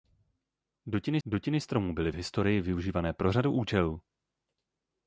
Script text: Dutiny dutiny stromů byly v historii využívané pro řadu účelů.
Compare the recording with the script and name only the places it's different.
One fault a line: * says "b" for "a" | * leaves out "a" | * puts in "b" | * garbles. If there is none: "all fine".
all fine